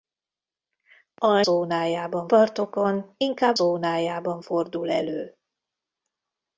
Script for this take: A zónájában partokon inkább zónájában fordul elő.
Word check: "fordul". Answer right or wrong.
right